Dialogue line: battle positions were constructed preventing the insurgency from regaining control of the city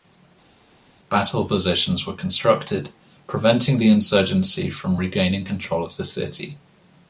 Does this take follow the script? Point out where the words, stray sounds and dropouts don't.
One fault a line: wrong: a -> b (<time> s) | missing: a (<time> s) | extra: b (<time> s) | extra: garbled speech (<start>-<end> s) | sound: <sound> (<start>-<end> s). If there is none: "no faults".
no faults